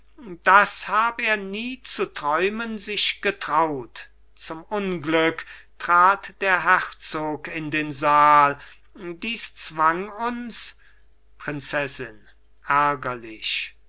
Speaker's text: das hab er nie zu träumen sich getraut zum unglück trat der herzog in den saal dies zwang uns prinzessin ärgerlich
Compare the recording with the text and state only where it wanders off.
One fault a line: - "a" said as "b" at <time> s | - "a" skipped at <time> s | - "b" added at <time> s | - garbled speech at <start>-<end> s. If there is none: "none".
none